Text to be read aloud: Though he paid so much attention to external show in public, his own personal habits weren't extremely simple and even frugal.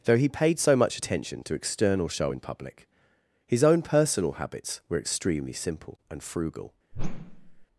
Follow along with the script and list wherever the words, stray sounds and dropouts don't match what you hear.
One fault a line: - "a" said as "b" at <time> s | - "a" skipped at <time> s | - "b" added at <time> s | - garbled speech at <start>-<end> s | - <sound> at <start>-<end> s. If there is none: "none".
- "weren't" said as "were" at 4.9 s
- "even" skipped at 6.2 s
- whoosh at 6.9-7.7 s